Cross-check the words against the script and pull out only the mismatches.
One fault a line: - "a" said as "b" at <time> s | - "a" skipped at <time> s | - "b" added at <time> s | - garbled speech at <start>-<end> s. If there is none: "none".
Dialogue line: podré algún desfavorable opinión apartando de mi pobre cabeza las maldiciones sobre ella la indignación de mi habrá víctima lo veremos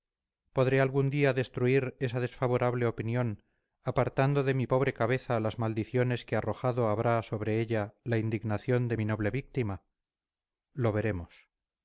- "día destruir esa" added at 1.1 s
- "que arrojado habrá" added at 6.2 s
- "habrá" said as "noble" at 9.0 s